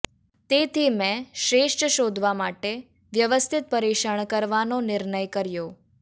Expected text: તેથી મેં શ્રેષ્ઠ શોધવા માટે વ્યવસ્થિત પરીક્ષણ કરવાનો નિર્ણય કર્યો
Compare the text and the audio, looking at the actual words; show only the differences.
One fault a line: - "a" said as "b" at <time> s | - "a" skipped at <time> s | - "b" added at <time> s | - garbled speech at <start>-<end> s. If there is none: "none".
none